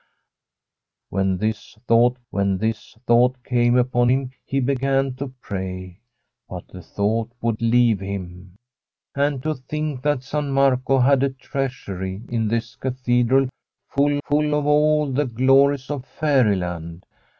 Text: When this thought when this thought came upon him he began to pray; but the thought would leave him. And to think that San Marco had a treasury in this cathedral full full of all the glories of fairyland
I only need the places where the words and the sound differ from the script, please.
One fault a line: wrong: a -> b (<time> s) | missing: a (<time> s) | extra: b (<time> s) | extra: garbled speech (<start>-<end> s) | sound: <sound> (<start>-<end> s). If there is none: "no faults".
no faults